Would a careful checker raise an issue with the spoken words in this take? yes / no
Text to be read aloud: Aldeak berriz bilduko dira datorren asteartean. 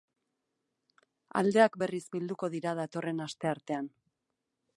no